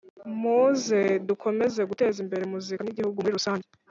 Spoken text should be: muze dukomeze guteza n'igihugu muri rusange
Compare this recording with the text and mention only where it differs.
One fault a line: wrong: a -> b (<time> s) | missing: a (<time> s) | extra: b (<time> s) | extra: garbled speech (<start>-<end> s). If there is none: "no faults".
extra: imbere muzika (2.2 s)